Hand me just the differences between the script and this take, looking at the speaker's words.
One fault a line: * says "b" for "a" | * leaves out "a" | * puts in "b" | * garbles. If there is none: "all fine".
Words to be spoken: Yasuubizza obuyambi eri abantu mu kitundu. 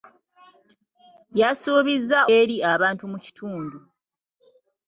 * leaves out "obuyambi"